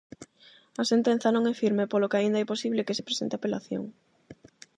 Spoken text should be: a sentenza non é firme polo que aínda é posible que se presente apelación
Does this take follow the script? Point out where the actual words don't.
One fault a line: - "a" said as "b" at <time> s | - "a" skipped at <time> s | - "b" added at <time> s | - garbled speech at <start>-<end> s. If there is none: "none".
none